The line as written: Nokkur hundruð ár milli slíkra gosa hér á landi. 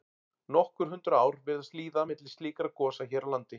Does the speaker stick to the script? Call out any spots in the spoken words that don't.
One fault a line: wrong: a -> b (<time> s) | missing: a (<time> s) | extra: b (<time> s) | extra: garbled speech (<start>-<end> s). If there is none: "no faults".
extra: virðast líða (1.5 s)